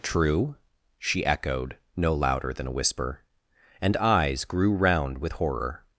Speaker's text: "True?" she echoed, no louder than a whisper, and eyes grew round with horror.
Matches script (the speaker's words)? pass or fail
pass